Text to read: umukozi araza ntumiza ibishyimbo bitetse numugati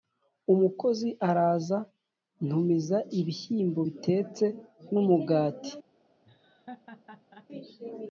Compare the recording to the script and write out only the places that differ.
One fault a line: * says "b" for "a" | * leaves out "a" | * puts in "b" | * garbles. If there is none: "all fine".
all fine